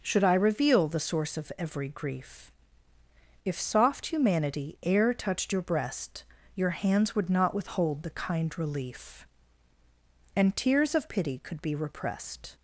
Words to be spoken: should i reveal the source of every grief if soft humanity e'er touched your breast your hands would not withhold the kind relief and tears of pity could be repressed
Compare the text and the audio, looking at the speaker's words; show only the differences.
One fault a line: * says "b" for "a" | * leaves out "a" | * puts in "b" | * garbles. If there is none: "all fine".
all fine